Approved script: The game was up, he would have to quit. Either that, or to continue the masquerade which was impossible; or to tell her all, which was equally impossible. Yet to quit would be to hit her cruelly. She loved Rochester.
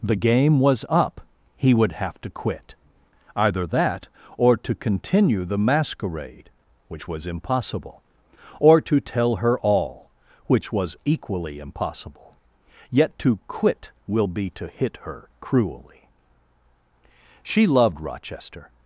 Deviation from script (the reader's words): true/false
true